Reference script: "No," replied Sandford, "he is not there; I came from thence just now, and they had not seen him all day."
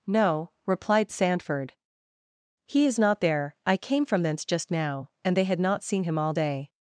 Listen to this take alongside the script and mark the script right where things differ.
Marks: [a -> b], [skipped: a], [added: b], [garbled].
"No," replied Sandford, "he is not there; I came from thence just now, and they had not seen him all day."